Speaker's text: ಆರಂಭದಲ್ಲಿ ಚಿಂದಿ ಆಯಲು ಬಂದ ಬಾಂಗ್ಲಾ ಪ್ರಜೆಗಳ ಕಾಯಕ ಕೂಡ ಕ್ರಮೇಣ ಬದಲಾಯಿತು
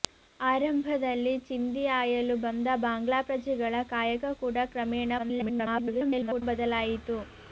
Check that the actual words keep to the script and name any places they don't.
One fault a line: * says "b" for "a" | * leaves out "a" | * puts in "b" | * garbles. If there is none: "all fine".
* garbles